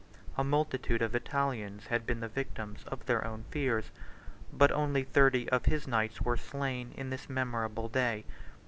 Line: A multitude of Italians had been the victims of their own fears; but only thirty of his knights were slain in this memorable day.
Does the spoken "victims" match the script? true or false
true